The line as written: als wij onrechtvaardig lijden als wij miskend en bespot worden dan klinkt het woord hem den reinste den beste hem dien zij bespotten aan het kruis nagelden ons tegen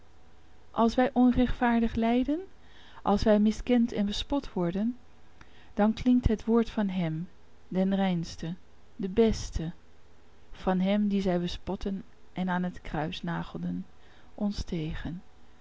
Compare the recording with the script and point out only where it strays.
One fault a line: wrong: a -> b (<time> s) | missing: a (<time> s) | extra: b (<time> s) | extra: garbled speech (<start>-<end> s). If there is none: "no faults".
extra: van (6.7 s)
extra: van (10.5 s)
extra: en (12.3 s)